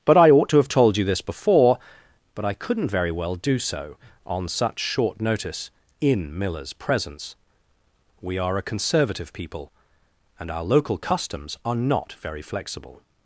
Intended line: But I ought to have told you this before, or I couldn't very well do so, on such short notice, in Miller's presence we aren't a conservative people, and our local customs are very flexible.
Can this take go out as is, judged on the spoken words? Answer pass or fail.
fail